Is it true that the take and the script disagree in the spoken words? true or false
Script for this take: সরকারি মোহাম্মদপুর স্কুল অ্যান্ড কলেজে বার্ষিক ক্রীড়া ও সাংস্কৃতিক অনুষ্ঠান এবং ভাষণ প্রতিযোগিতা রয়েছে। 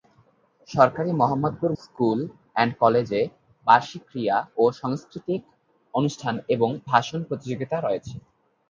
false